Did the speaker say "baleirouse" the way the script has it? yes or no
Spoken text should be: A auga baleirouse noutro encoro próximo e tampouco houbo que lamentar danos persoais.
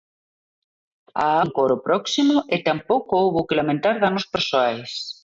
no